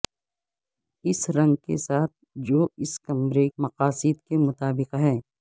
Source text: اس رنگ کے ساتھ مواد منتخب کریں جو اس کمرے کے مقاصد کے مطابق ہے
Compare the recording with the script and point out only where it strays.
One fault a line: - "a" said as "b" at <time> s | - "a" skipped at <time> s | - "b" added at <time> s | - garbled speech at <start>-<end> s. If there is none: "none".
- "مواد منتخب کریں" skipped at 2.1 s
- "کے" skipped at 3.5 s